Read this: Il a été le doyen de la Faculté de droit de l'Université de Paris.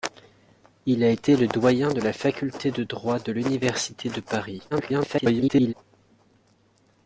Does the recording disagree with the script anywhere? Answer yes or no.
yes